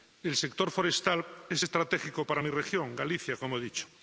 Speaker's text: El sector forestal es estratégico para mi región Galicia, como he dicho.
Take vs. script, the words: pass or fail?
pass